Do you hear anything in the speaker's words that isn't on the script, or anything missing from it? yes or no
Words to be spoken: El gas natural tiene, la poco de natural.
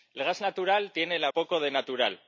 no